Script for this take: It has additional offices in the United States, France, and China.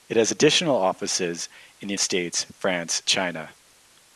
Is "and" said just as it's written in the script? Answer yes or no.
no